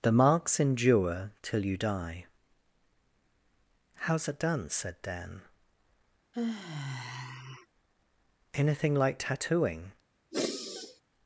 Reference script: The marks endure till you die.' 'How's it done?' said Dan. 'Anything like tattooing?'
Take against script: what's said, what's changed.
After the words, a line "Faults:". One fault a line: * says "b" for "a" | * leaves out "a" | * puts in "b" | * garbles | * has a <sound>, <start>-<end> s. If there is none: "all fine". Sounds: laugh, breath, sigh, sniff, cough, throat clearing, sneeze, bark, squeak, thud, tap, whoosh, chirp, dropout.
The marks endure till you die.' 'How's it done?' said Dan. 'Anything like tattooing?'
Faults:
* has a sigh, 6.3-7.7 s
* has a sigh, 10.3-11.0 s